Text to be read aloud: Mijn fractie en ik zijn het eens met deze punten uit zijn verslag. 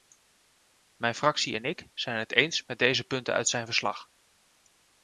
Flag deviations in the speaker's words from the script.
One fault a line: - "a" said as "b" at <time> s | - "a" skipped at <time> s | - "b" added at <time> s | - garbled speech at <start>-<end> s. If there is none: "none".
none